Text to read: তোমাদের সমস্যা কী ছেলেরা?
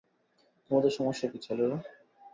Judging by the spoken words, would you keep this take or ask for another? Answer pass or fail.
pass